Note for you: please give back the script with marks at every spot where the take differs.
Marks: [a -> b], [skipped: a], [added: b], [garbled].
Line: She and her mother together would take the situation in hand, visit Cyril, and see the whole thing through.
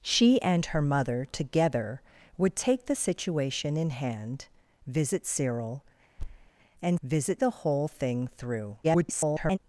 She and her mother together would take the situation in hand, visit Cyril, and [see -> visit] the whole thing through. [garbled]